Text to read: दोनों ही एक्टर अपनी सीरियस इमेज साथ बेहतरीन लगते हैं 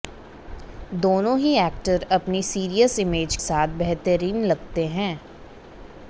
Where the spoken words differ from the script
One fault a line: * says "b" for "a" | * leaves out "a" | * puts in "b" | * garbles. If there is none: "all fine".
all fine